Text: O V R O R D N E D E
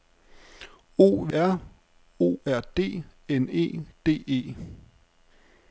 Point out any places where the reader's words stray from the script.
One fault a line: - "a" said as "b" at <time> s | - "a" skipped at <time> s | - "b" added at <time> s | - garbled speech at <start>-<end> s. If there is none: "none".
none